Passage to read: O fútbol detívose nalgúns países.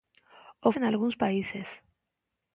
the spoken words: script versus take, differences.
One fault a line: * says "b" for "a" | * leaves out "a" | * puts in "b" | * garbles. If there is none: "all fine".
* leaves out "fútbol detívose"